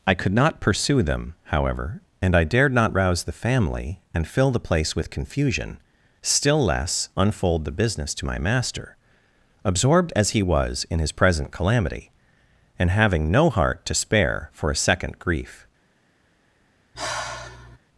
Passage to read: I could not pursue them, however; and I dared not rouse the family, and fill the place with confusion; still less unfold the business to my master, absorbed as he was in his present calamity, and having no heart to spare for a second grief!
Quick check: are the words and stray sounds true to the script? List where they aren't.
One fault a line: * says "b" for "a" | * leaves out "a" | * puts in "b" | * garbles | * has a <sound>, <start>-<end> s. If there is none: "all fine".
* has a sigh, 16.9-17.8 s